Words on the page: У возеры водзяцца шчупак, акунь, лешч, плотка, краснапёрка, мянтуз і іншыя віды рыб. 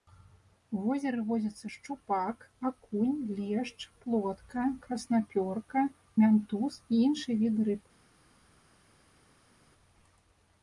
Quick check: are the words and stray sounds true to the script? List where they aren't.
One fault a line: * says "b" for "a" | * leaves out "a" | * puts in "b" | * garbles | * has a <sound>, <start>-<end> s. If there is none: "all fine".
all fine